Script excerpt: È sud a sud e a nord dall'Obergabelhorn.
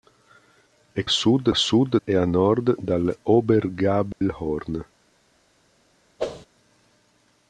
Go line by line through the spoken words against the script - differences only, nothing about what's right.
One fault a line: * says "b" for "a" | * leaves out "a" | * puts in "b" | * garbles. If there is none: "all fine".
all fine